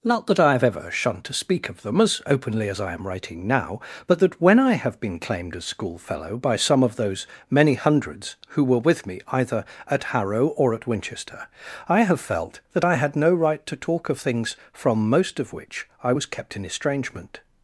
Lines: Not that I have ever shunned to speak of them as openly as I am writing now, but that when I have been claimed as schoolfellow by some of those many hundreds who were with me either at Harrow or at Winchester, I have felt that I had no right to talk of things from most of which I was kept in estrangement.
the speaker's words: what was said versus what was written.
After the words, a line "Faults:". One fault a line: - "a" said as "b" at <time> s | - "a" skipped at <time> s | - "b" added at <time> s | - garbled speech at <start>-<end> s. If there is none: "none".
Not that I have ever shunned to speak of them as openly as I am writing now, but that when I have been claimed as schoolfellow by some of those many hundreds who were with me either at Harrow or at Winchester, I have felt that I had no right to talk of things from most of which I was kept in estrangement.
Faults:
none